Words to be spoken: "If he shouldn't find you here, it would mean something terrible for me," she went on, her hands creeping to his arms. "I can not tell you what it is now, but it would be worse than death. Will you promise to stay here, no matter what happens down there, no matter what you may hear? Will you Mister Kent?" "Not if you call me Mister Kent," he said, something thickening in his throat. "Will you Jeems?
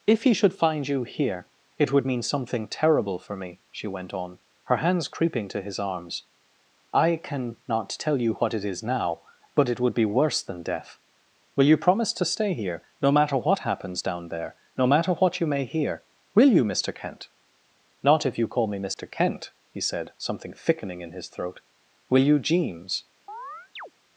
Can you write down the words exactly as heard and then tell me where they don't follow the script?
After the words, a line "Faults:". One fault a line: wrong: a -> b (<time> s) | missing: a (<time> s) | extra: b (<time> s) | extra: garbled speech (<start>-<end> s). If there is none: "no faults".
"If he should find you here, it would mean something terrible for me," she went on, her hands creeping to his arms. "I can not tell you what it is now, but it would be worse than death. Will you promise to stay here, no matter what happens down there, no matter what you may hear? Will you Mister Kent?" "Not if you call me Mister Kent," he said, something thickening in his throat. "Will you Jeems?
Faults:
wrong: shouldn't -> should (0.3 s)